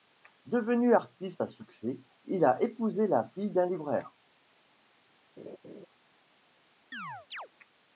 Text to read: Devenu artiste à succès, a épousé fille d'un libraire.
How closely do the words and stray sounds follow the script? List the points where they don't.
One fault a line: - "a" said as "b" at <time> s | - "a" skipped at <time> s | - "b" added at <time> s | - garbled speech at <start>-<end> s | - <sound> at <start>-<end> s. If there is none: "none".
- "il" added at 2.3 s
- "la" added at 3.1 s
- laugh at 5.4-5.9 s
- chirp at 6.9-7.5 s